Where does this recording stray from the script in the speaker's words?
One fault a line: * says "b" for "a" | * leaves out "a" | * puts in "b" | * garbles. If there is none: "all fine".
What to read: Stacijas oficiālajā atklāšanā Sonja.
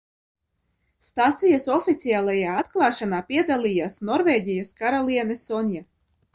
* puts in "piedalījās Norvēģijas karaliene"